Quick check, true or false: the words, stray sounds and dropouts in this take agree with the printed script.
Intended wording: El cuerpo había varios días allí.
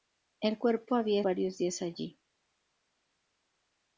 true